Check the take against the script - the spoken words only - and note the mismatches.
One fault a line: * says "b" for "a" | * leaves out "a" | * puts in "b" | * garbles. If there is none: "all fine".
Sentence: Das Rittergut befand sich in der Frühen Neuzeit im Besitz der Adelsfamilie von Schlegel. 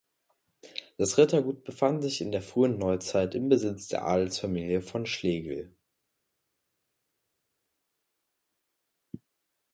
all fine